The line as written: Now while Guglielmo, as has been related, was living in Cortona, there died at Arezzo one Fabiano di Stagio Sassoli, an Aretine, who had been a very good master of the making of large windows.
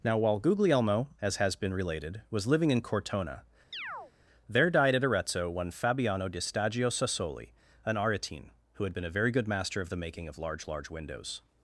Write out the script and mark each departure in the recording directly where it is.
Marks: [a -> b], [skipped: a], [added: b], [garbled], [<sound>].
Now while Guglielmo, as has been related, was living in Cortona, [chirp] there died at Arezzo one Fabiano di Stagio Sassoli, an Aretine, who had been a very good master of the making of large [added: large] windows.